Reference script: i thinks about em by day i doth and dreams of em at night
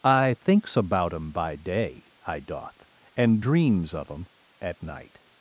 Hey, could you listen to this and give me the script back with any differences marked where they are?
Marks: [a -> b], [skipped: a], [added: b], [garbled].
i thinks about em by day i doth and dreams of em at night